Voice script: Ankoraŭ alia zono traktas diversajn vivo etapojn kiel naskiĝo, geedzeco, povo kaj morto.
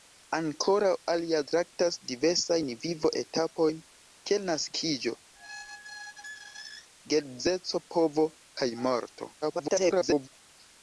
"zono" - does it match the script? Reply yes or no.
no